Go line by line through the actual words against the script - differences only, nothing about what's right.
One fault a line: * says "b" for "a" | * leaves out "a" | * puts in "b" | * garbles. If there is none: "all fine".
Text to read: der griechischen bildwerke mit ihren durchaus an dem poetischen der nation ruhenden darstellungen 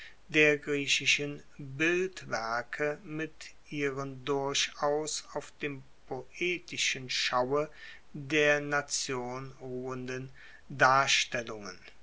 * says "auf" for "an"
* puts in "schaue"